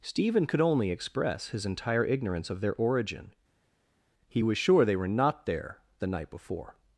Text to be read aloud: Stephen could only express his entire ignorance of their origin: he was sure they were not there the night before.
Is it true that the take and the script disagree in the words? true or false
false